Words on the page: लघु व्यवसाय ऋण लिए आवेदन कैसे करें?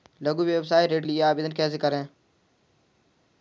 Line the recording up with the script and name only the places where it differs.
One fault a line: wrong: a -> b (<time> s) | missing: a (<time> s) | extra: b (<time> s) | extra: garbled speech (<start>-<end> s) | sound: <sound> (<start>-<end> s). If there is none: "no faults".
no faults